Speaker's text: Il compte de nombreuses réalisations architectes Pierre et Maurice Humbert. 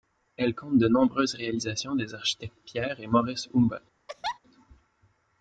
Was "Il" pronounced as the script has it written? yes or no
no